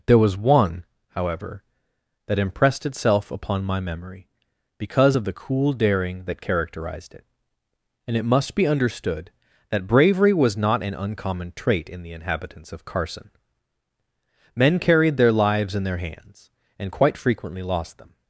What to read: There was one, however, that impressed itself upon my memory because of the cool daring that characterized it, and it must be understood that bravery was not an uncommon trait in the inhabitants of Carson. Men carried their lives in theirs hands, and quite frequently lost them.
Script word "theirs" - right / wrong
wrong